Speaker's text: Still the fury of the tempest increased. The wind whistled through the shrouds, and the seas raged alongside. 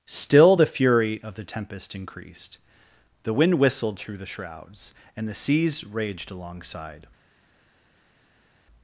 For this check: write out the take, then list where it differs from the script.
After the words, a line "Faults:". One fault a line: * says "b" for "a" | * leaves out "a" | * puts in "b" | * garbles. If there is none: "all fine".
Still the fury of the tempest increased. The wind whistled through the shrouds, and the seas raged alongside.
Faults:
all fine